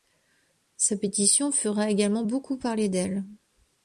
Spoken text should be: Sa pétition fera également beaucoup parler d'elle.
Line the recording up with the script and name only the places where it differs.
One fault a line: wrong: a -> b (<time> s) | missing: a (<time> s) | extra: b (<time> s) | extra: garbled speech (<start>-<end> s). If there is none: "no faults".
no faults